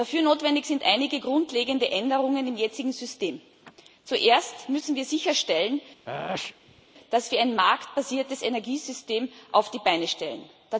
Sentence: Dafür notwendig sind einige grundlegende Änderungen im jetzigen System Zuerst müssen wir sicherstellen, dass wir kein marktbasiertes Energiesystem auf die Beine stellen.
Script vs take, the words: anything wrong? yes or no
yes